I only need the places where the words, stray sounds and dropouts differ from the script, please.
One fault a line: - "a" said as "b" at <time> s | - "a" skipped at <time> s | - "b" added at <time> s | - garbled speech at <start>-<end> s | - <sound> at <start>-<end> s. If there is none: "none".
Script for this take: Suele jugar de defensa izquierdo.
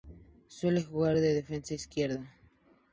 none